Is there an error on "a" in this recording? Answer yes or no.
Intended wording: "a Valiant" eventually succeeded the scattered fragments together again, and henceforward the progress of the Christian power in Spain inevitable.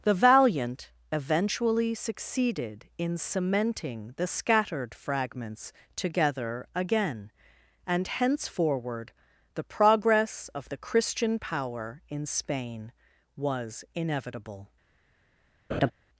yes